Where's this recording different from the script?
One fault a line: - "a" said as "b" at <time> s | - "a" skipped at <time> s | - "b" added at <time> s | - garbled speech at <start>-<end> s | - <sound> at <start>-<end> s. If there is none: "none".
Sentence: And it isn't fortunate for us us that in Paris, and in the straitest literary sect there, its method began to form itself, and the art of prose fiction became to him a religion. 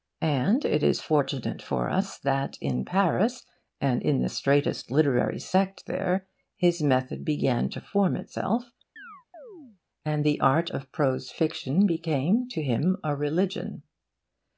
- "isn't" said as "is" at 0.8 s
- "us" skipped at 2.2 s
- "its" said as "his" at 6.6 s
- chirp at 9.0-9.8 s